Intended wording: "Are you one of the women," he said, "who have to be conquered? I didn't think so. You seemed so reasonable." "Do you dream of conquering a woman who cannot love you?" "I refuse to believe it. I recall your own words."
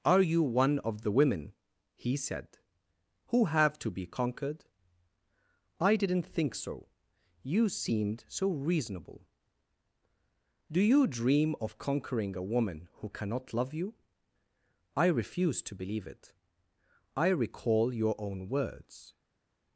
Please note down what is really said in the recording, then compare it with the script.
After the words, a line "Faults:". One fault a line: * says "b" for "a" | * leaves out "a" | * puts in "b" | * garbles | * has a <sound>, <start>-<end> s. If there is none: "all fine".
"Are you one of the women," he said, "who have to be conquered? I didn't think so. You seemed so reasonable." "Do you dream of conquering a woman who cannot love you?" "I refuse to believe it. I recall your own words."
Faults:
all fine